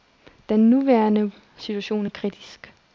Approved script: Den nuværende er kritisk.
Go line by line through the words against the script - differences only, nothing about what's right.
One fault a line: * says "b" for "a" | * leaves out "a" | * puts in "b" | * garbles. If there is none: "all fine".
* puts in "situation"